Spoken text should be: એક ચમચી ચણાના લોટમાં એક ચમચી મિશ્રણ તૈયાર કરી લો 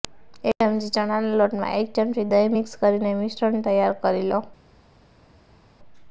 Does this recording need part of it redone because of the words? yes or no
yes